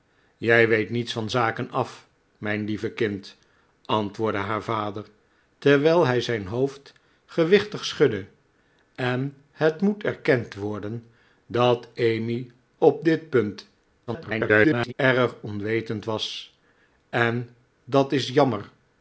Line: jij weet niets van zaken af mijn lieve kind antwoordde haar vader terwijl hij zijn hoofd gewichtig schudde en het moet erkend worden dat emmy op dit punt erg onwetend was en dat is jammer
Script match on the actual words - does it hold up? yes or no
no